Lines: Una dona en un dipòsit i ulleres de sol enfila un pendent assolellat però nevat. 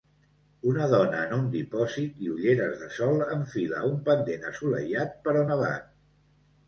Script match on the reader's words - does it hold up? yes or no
yes